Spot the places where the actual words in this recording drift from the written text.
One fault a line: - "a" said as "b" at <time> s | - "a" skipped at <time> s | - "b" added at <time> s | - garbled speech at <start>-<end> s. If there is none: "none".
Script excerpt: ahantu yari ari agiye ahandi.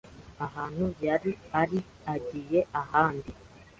none